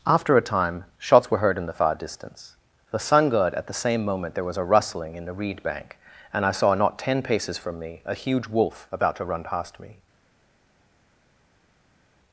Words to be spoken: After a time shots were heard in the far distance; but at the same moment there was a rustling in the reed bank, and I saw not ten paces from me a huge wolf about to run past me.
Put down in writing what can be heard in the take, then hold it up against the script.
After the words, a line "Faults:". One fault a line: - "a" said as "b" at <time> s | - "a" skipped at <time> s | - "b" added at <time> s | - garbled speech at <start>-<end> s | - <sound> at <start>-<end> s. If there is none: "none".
After a time shots were heard in the far distance; the sun god at the same moment there was a rustling in the reed bank, and I saw not ten paces from me a huge wolf about to run past me.
Faults:
- "but" said as "the sun god" at 2.9 s